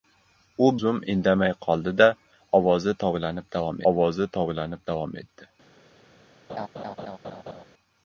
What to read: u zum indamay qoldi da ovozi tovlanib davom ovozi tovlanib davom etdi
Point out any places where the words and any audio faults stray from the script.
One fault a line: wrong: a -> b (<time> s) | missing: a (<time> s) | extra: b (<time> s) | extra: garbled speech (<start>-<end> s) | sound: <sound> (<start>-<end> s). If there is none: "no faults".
sound: laugh (6.5-7.6 s)